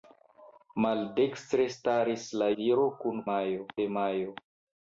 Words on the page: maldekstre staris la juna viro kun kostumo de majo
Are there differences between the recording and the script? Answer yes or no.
yes